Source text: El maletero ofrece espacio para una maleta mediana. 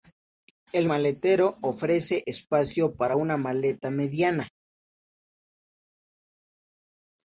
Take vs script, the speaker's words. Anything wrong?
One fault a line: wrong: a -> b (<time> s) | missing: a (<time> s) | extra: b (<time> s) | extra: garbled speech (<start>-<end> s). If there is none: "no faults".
no faults